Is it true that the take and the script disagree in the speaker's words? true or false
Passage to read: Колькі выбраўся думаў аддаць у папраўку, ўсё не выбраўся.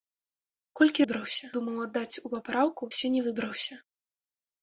false